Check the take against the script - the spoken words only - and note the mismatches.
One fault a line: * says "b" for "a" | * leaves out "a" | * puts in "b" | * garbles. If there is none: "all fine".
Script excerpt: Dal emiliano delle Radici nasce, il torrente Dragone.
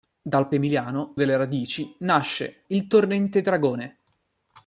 all fine